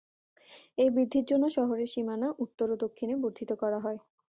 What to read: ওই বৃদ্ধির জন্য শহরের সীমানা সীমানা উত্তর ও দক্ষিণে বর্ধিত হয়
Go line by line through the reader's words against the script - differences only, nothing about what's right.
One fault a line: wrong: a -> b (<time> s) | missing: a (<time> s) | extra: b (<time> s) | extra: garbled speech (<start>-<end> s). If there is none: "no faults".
wrong: ওই -> এই (0.8 s)
missing: সীমানা (2.3 s)
extra: করা (3.6 s)